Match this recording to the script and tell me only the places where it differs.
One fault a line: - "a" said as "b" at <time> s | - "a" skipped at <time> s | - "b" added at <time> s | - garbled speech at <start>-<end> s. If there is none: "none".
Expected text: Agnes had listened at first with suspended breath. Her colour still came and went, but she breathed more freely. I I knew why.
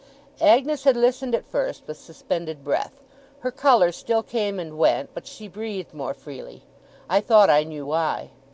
- "thought" added at 7.2 s